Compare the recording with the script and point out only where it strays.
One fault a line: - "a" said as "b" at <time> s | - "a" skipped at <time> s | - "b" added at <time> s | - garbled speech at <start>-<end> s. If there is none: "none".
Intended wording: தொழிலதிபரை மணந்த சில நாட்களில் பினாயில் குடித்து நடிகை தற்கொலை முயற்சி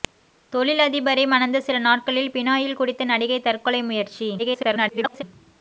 - garbled speech at 4.4-5.2 s